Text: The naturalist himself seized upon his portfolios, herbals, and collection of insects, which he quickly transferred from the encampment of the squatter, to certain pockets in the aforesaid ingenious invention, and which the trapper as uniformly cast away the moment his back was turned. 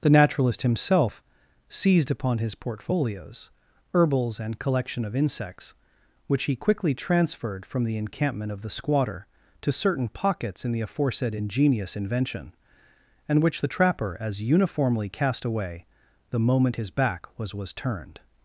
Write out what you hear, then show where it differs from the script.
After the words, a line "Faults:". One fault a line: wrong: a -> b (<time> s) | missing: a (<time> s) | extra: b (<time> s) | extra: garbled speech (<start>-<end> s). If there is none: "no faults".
The naturalist himself seized upon his portfolios, herbals, and collection of insects, which he quickly transferred from the encampment of the squatter, to certain pockets in the aforesaid ingenious invention, and which the trapper as uniformly cast away the moment his back was was turned.
Faults:
extra: was (17.5 s)